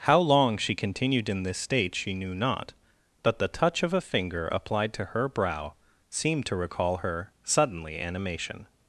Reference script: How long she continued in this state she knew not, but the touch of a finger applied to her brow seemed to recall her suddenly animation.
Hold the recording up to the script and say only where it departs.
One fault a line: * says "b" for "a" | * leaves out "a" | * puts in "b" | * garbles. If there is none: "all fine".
all fine